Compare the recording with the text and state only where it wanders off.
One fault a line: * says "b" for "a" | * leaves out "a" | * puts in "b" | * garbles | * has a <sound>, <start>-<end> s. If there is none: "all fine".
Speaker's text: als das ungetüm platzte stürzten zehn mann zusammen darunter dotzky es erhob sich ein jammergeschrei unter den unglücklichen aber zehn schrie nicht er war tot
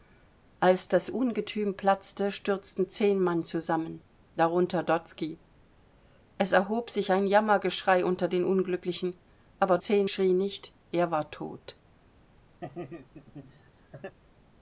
* has a laugh, 12.6-14.2 s